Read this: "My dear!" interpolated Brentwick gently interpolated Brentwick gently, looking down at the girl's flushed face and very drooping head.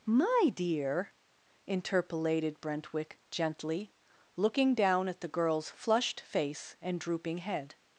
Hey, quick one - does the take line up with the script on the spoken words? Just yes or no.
no